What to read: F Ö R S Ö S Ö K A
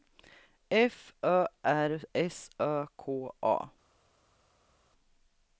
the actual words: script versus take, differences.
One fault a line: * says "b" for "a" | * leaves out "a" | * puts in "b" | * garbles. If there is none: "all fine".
* leaves out "S Ö"